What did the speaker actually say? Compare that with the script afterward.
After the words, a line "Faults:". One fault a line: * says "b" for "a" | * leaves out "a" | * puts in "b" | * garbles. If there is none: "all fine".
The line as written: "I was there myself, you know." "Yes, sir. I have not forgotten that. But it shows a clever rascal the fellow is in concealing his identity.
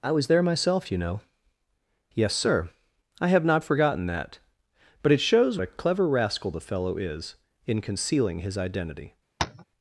"I was there myself, you know." "Yes, sir. I have not forgotten that. But it shows a clever rascal the fellow is in concealing his identity.
Faults:
all fine